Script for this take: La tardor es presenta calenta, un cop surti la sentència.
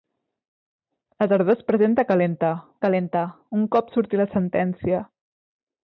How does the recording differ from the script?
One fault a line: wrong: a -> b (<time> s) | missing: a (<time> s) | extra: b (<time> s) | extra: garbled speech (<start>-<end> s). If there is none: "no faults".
extra: calenta (2.9 s)